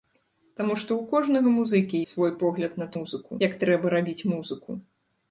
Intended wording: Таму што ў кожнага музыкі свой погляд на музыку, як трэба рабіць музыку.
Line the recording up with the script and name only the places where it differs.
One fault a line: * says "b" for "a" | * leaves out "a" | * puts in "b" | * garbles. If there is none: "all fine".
all fine